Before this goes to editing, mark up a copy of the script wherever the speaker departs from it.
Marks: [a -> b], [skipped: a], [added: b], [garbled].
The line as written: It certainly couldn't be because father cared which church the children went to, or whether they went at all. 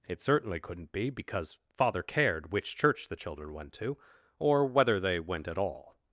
It certainly couldn't be because father cared which church the children went to, or whether they went at all.